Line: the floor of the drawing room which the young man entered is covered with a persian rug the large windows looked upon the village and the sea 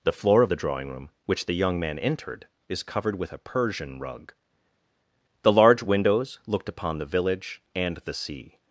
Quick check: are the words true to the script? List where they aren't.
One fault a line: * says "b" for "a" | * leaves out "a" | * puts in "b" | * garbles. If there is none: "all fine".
all fine